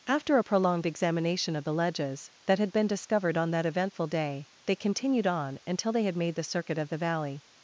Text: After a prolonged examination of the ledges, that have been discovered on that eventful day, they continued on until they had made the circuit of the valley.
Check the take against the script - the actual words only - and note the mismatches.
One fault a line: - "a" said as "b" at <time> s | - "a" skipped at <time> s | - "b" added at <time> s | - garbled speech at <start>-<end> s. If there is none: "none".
- "have" said as "had" at 2.6 s